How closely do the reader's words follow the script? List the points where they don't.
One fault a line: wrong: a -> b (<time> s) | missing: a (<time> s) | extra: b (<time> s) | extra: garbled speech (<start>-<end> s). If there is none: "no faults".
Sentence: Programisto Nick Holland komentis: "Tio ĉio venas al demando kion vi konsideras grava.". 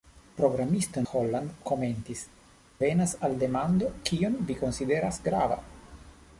missing: Nick (1.0 s)
missing: Tio ĉio (2.2 s)